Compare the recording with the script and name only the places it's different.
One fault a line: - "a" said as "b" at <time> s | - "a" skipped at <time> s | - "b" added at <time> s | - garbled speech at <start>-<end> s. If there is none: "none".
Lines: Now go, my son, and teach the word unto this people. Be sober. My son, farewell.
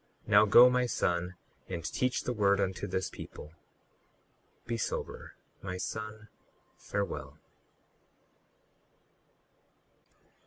none